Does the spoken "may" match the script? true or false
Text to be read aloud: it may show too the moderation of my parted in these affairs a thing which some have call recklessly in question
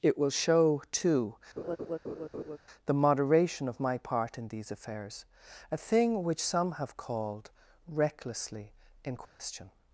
false